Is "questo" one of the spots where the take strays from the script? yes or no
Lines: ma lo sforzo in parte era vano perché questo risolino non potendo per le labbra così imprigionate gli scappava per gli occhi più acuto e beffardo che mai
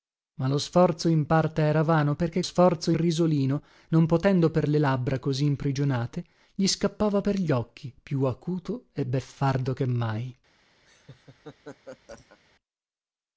yes